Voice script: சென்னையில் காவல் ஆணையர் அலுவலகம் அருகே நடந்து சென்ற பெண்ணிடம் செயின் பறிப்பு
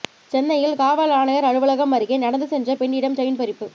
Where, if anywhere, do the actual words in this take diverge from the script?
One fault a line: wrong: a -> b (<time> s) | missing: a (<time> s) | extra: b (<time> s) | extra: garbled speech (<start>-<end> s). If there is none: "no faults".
no faults